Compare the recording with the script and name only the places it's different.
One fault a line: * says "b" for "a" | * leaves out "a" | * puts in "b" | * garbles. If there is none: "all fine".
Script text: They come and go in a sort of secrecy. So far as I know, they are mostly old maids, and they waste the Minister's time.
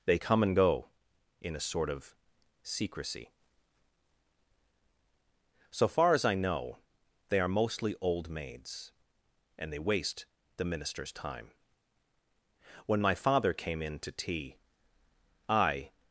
* puts in "When my father came in to tea I"